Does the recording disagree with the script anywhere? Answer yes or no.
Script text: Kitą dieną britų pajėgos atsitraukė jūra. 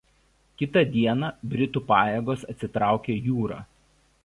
no